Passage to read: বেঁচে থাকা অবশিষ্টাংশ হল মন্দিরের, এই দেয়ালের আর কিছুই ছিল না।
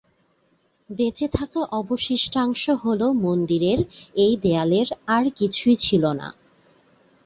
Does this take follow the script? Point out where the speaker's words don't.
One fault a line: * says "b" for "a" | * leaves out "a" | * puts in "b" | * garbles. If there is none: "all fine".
all fine